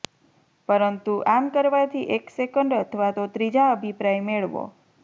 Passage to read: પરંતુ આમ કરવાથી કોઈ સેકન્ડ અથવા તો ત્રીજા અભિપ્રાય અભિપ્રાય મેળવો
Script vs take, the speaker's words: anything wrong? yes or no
yes